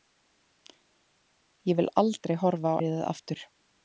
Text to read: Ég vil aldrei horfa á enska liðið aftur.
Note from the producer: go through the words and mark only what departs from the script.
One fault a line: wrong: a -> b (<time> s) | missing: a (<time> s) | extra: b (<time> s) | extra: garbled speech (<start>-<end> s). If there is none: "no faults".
missing: enska (2.8 s)